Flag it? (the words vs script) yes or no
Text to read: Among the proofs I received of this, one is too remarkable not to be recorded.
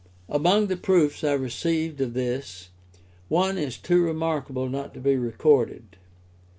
no